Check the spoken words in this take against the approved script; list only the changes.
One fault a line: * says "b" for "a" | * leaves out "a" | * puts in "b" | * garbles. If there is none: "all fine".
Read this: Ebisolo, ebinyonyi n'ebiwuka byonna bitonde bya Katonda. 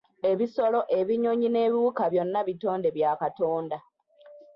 all fine